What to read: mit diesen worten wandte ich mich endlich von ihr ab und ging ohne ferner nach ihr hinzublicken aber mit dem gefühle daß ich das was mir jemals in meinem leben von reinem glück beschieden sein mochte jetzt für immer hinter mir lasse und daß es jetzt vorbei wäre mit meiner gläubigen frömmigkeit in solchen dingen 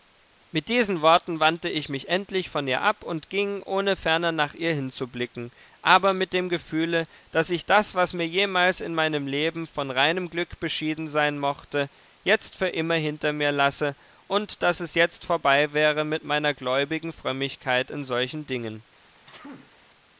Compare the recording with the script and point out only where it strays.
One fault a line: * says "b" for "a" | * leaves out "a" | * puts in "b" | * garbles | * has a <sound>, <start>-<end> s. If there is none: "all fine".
* has a sneeze, 19.3-19.8 s